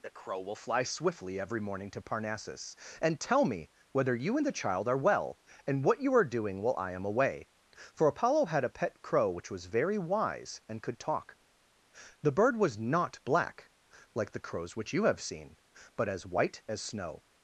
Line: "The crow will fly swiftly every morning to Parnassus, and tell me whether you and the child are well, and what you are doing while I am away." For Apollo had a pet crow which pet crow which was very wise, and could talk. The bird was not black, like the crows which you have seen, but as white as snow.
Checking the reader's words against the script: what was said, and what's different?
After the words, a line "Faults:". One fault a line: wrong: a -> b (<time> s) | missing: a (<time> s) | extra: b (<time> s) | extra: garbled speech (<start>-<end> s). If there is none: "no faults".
"The crow will fly swiftly every morning to Parnassus, and tell me whether you and the child are well, and what you are doing while I am away." For Apollo had a pet crow which was very wise, and could talk. The bird was not black, like the crows which you have seen, but as white as snow.
Faults:
missing: pet crow which (9.5 s)